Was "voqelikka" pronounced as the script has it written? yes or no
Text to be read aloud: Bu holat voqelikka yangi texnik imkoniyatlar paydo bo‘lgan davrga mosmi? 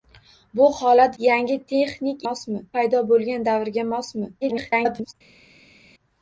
no